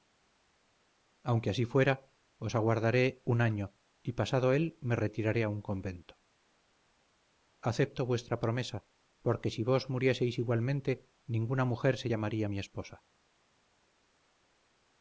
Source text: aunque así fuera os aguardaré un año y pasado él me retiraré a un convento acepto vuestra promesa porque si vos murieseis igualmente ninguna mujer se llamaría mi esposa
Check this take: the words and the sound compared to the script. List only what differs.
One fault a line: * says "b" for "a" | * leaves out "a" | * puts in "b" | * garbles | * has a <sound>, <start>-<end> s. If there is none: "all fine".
all fine